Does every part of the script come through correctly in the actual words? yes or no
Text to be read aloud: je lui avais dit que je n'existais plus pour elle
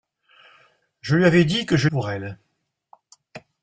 no